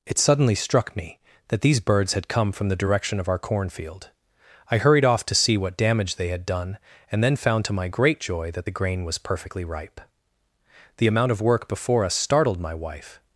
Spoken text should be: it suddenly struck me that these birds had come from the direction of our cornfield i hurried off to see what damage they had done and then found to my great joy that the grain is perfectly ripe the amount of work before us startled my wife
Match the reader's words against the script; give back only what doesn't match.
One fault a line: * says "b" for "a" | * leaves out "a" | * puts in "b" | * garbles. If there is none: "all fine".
* says "was" for "is"